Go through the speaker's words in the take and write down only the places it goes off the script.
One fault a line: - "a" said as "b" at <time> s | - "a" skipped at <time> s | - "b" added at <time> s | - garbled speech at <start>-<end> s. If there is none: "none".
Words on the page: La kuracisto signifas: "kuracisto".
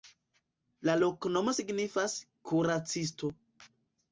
- "kuracisto" said as "loknomo" at 1.0 s